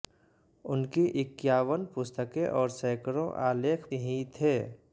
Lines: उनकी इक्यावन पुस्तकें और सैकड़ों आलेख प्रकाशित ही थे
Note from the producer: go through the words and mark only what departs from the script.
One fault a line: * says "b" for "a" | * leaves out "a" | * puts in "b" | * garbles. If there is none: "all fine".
* leaves out "प्रकाशित"